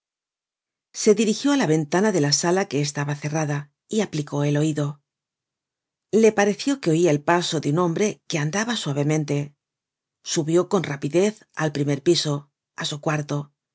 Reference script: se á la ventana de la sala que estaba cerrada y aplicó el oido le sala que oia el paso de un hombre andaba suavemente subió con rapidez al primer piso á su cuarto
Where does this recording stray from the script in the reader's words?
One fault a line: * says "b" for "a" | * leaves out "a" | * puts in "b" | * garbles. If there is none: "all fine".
* puts in "dirigió"
* says "pareció" for "sala"
* puts in "que"